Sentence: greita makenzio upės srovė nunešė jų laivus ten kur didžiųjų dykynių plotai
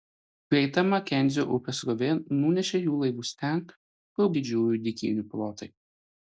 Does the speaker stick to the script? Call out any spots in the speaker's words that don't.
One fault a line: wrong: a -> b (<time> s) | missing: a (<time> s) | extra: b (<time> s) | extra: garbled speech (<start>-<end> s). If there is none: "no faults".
no faults